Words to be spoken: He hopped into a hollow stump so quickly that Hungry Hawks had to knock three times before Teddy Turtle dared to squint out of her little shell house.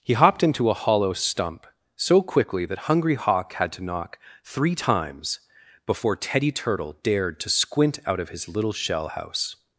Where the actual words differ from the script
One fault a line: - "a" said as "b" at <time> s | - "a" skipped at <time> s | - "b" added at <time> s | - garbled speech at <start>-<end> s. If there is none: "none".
- "Hawks" said as "Hawk" at 3.1 s
- "her" said as "his" at 8.3 s